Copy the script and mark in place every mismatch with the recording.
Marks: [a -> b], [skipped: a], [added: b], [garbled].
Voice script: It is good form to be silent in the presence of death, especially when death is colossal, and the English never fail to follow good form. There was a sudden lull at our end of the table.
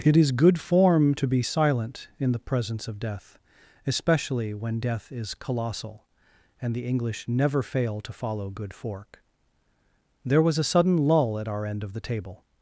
It is good form to be silent in the presence of death, especially when death is colossal, and the English never fail to follow good [form. -> fork] There was a sudden lull at our end of the table.